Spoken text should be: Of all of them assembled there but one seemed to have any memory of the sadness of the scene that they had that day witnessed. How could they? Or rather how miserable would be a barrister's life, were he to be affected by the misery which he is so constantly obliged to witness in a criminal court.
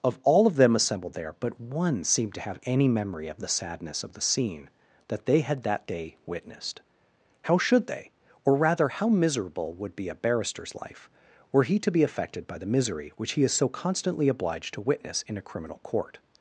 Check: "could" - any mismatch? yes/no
yes